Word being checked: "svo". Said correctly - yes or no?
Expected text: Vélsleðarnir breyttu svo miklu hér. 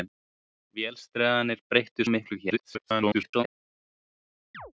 no